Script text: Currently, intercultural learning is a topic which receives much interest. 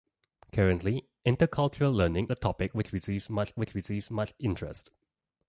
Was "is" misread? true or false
true